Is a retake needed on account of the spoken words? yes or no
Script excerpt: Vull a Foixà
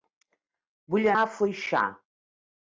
no